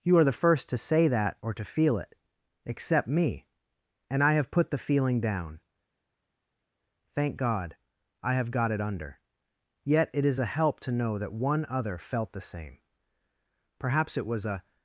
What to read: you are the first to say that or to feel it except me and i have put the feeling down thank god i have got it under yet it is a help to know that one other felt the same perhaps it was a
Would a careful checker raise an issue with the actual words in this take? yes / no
no